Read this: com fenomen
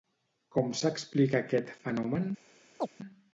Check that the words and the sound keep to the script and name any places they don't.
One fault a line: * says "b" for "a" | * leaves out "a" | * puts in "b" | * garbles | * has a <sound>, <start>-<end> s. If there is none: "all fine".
* puts in "s'explica aquest"
* has a chirp, 2.8-2.9 s